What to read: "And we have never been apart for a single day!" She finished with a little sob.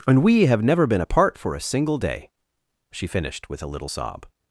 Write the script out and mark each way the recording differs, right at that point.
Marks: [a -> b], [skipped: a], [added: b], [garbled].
"And we have never been apart for a single day!" She finished with a little sob.